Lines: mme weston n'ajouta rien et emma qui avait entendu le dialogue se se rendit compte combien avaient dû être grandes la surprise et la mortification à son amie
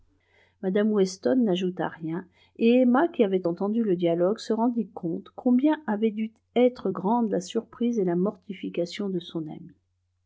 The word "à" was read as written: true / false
false